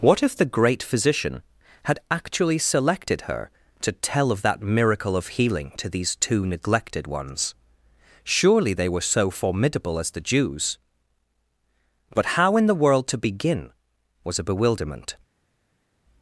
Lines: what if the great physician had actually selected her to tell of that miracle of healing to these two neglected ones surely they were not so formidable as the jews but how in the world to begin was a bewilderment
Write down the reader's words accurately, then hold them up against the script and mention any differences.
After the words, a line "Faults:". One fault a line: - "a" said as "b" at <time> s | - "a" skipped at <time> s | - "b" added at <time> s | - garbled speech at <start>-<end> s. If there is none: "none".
what if the great physician had actually selected her to tell of that miracle of healing to these two neglected ones surely they were so formidable as the jews but how in the world to begin was a bewilderment
Faults:
- "not" skipped at 9.0 s